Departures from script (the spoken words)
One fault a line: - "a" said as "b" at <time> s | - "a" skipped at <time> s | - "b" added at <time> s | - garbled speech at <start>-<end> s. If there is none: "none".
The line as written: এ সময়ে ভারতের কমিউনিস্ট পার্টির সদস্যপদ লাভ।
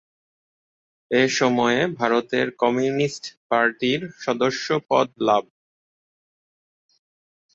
none